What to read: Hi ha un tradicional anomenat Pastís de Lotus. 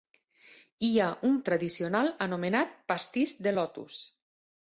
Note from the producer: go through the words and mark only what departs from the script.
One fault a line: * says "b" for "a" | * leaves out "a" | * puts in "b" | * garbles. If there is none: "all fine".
all fine